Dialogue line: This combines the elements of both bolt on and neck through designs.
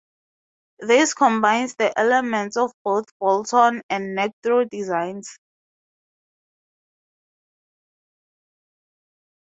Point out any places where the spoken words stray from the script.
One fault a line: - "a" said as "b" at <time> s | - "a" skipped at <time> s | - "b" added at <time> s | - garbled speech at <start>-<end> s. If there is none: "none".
none